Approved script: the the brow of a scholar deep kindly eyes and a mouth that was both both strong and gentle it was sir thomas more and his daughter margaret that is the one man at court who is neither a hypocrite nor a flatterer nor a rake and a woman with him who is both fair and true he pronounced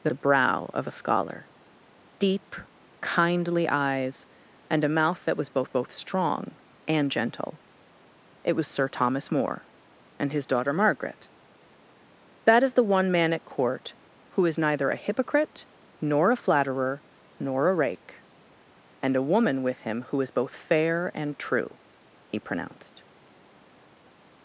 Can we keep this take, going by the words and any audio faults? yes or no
yes